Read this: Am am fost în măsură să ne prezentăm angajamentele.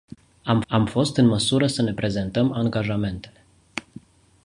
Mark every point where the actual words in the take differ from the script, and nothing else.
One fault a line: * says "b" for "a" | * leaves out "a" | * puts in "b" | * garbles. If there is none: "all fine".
all fine